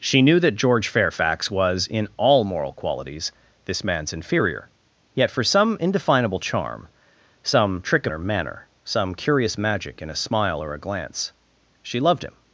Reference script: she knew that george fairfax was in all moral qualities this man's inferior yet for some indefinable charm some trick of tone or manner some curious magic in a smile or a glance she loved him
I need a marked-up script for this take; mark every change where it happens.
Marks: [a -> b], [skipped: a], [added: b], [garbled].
she knew that george fairfax was in all moral qualities this man's inferior yet for some indefinable charm some trick [skipped: of tone] or manner some curious magic in a smile or a glance she loved him